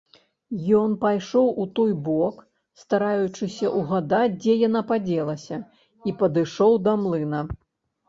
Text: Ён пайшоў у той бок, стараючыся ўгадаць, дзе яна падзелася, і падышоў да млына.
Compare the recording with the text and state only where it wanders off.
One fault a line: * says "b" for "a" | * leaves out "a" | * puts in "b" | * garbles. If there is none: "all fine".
all fine